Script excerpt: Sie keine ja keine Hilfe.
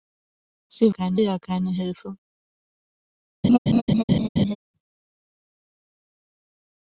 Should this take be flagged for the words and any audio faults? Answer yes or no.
yes